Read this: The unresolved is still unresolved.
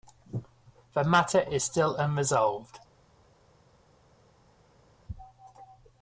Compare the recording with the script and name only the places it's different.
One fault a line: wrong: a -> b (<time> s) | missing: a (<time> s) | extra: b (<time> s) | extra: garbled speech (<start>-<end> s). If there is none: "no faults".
wrong: unresolved -> matter (1.0 s)